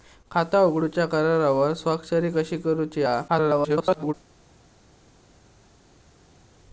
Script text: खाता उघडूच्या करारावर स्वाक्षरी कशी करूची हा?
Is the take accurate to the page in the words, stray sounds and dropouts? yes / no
no